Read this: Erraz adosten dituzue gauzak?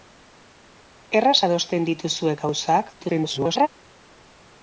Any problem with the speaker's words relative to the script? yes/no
yes